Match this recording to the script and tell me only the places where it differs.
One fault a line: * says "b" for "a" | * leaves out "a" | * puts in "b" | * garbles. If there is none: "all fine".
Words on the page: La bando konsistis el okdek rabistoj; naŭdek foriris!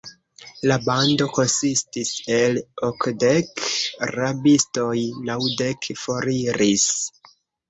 all fine